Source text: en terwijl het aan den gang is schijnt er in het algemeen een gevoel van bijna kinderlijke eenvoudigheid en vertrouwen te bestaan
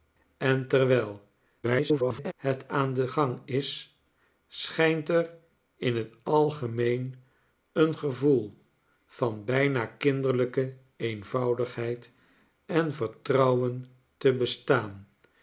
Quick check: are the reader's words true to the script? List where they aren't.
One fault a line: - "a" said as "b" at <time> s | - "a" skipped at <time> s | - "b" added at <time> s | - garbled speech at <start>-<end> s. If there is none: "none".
- garbled speech at 1.6-2.3 s